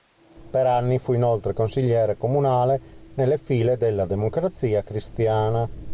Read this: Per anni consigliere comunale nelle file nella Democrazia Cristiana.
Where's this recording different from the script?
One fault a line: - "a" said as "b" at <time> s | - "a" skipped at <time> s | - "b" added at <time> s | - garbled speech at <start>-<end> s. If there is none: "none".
- "fu inoltre" added at 1.0 s
- "nella" said as "della" at 3.8 s